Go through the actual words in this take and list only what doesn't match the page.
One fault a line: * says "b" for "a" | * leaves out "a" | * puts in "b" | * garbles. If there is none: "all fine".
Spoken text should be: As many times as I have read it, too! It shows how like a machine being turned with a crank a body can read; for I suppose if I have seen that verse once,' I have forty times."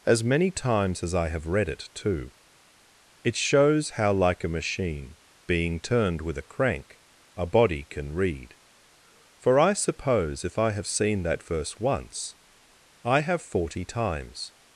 all fine